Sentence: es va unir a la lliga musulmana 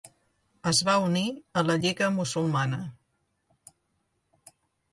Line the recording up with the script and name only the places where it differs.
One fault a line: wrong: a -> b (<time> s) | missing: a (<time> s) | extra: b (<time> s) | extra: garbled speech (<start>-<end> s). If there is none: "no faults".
no faults